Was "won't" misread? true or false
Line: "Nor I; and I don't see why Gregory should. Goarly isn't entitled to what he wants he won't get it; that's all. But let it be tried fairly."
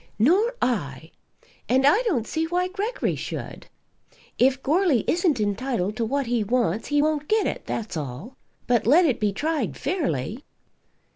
false